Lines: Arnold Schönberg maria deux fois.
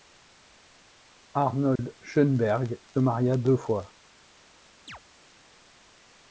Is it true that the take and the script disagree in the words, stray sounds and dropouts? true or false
true